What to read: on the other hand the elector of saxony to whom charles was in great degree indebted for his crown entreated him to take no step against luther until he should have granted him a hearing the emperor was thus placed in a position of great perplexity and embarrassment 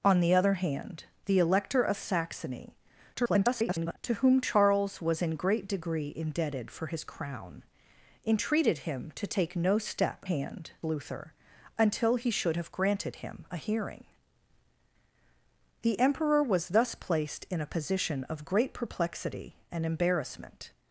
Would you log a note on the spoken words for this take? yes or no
yes